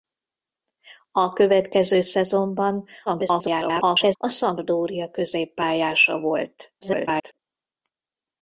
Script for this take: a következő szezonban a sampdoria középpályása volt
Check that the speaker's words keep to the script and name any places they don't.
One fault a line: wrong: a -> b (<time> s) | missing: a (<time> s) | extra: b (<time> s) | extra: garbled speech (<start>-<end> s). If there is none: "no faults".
extra: garbled speech (3.1-4.2 s)
extra: garbled speech (6.8-7.4 s)